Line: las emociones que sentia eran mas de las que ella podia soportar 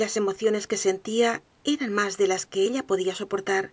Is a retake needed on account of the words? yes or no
no